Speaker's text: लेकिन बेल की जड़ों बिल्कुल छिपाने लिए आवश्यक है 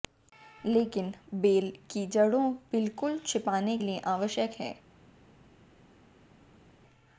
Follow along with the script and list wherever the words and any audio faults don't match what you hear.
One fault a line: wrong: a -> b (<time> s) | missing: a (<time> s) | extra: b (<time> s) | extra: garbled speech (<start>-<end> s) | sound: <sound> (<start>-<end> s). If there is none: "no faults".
no faults